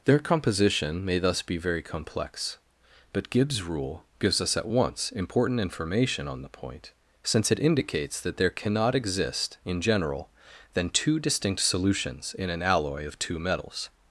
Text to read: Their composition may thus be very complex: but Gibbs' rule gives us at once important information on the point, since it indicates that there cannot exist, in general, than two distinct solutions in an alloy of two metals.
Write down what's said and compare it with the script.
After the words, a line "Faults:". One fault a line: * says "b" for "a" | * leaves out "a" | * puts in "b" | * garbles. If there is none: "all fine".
Their composition may thus be very complex: but Gibbs' rule gives us at once important information on the point, since it indicates that there cannot exist, in general, than two distinct solutions in an alloy of two metals.
Faults:
all fine